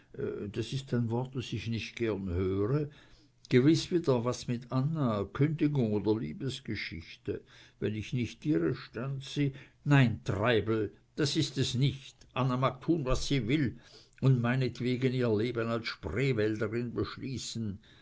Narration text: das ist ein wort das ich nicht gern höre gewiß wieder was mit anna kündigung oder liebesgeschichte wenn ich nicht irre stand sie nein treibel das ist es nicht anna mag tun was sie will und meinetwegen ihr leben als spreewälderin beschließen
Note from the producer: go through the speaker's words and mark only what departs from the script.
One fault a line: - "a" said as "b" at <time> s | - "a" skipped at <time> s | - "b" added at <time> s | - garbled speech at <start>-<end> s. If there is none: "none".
none